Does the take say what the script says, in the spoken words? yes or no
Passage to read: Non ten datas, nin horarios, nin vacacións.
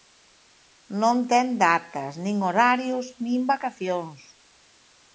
yes